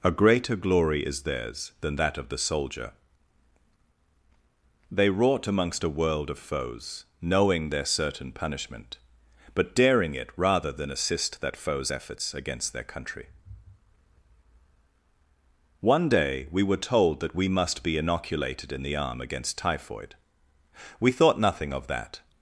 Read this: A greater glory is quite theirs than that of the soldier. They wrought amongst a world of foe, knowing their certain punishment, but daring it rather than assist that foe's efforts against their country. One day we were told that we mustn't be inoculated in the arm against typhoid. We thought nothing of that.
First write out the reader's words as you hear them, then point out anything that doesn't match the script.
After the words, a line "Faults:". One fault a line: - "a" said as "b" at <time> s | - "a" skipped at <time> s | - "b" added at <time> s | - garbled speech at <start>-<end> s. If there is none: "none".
A greater glory is theirs than that of the soldier. They wrought amongst a world of foes, knowing their certain punishment, but daring it rather than assist that foe's efforts against their country. One day we were told that we must be inoculated in the arm against typhoid. We thought nothing of that.
Faults:
- "quite" skipped at 1.2 s
- "foe" said as "foes" at 6.4 s
- "mustn't" said as "must" at 17.5 s